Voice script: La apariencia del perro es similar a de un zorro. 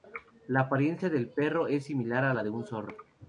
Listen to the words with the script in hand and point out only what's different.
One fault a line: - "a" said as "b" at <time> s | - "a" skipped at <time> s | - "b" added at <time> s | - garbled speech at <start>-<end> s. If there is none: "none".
- "la" added at 2.3 s